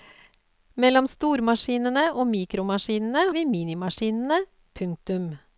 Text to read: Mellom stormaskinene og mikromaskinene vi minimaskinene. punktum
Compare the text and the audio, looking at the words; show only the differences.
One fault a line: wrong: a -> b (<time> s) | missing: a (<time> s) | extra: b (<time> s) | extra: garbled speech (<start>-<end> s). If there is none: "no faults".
no faults